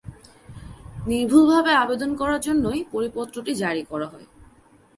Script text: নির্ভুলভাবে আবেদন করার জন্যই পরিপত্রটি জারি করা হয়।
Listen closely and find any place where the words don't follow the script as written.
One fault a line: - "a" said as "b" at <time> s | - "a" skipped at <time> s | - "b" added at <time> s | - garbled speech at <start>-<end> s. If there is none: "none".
none